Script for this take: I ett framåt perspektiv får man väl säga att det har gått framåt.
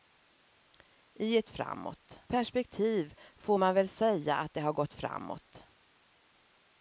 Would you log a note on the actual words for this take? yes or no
no